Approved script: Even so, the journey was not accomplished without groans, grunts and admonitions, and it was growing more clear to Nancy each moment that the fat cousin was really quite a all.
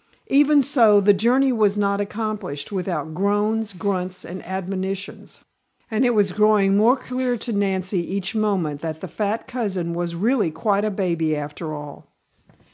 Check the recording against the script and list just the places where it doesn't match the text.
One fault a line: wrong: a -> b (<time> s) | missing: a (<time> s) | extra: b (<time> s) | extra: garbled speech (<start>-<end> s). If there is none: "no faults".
extra: baby after (10.9 s)